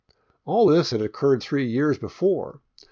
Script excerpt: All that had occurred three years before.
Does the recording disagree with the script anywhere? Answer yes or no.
yes